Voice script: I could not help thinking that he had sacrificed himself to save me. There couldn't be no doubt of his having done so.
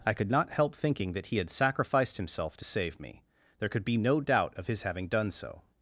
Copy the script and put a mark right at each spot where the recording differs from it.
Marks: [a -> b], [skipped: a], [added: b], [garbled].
I could not help thinking that he had sacrificed himself to save me. There [couldn't -> could] be no doubt of his having done so.